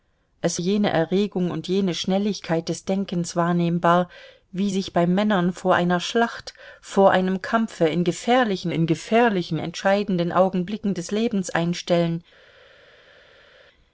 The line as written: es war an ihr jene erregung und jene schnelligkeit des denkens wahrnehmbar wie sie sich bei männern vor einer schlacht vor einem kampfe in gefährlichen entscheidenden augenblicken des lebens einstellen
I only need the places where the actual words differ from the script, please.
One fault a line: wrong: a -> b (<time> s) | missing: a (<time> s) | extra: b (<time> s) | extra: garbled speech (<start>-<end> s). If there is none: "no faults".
missing: war an ihr (0.6 s)
missing: sie (4.7 s)
extra: in gefährlichen (8.7 s)